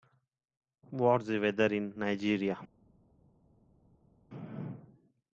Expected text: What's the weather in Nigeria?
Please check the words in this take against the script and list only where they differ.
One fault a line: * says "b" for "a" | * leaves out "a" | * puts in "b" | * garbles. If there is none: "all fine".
all fine